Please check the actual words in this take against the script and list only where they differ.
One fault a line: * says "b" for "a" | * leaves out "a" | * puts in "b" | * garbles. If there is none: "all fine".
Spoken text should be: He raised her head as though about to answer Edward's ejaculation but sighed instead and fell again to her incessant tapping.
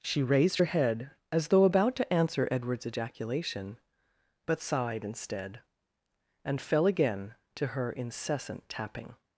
* says "She" for "He"